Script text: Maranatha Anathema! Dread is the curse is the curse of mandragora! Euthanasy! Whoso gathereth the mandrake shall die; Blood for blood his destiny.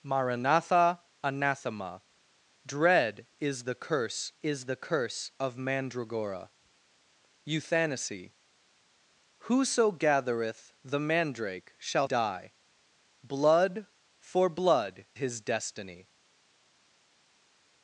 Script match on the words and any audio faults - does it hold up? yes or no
yes